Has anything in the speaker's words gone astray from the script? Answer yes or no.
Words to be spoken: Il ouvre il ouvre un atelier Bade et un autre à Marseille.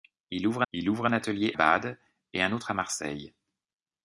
no